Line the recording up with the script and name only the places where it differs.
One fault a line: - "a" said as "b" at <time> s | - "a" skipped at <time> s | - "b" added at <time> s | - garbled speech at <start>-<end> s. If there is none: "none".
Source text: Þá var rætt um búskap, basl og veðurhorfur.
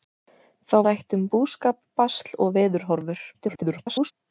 - "var" skipped at 0.8 s
- garbled speech at 3.3-4.1 s